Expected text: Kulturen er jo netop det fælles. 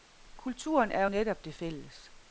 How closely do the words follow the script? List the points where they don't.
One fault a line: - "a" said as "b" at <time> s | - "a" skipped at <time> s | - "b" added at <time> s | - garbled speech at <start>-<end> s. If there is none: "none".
none